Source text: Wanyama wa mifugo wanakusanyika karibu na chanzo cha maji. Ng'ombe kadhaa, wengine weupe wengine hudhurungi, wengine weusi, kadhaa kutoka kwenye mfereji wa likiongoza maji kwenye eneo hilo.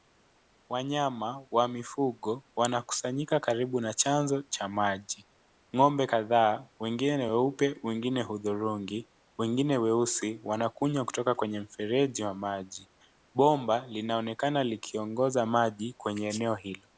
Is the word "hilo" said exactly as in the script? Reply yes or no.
yes